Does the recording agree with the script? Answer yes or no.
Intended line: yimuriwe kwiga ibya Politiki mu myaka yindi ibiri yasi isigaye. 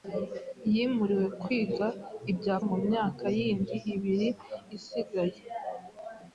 no